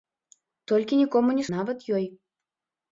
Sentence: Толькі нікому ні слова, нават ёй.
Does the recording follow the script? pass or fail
fail